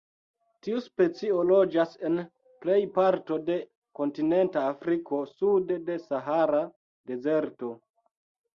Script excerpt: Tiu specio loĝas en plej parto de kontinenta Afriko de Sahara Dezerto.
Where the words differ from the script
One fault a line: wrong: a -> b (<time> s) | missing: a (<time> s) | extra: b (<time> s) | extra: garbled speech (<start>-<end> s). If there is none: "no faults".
extra: sude (5.3 s)